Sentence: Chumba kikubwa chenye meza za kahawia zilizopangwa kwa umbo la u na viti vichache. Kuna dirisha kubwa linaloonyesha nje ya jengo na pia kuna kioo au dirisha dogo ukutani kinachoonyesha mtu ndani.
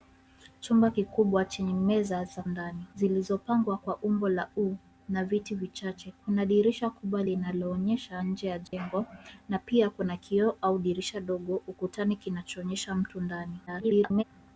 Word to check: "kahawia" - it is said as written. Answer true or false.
false